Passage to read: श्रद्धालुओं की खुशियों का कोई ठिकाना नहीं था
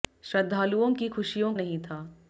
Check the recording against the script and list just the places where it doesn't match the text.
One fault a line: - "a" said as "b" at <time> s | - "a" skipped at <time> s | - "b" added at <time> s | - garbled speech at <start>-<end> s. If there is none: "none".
- "का कोई ठिकाना" skipped at 1.5 s